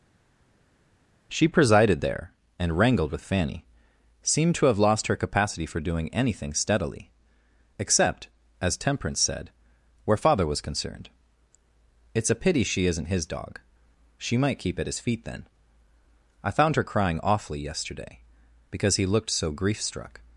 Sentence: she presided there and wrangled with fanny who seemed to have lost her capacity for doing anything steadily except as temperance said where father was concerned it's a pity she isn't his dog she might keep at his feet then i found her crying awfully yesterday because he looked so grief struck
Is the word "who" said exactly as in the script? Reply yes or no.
no